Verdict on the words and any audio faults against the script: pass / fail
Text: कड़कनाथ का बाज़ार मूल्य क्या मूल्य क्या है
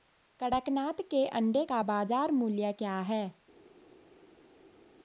fail